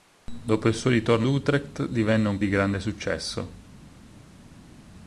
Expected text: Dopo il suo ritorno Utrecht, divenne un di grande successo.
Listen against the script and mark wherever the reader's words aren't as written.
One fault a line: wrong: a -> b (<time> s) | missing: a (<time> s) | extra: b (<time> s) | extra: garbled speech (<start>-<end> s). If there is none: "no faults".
no faults